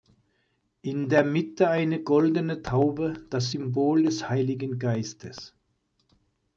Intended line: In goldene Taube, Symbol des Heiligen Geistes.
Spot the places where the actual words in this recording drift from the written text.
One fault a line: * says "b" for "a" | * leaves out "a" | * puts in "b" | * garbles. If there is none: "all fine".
* puts in "der Mitte eine"
* puts in "das"